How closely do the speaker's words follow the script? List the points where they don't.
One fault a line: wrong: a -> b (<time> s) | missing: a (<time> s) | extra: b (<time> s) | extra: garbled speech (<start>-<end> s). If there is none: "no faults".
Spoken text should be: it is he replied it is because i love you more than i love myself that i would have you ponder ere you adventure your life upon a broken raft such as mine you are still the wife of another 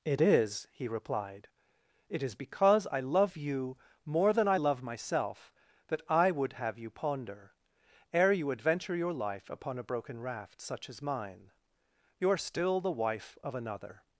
no faults